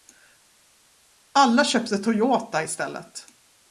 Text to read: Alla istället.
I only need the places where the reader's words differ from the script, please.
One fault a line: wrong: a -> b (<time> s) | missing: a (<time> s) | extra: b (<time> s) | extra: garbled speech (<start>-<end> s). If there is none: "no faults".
extra: köpte Toyota (1.6 s)